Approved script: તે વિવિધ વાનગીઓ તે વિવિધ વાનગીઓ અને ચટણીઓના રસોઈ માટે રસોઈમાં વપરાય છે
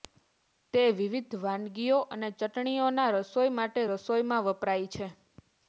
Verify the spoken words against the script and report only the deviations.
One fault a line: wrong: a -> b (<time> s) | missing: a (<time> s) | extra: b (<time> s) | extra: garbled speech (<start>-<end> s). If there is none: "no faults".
missing: તે વિવિધ વાનગીઓ (2.0 s)